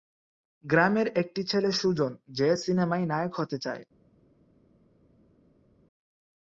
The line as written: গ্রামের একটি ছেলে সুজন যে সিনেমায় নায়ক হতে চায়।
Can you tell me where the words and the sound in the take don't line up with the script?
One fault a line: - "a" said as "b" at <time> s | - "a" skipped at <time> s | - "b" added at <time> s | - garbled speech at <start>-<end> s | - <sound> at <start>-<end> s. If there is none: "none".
none